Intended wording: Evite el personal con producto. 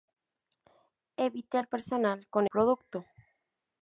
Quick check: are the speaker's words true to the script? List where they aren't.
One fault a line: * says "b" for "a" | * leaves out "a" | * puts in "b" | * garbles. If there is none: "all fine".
all fine